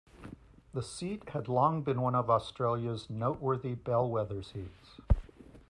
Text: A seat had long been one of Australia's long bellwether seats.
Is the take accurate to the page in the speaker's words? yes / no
no